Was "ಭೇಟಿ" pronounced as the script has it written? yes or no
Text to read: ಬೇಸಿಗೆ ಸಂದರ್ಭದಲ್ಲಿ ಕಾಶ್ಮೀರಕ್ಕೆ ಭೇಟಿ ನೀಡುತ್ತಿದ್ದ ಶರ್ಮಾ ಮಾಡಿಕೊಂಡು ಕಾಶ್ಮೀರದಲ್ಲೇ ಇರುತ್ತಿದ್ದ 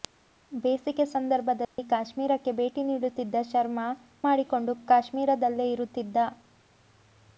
yes